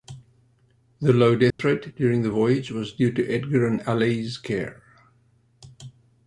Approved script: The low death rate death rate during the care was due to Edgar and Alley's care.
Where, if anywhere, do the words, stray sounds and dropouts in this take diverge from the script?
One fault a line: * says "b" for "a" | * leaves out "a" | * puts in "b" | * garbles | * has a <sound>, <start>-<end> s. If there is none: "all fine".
* has a dropout, 1.5-1.6 s
* leaves out "death rate"
* says "voyage" for "care"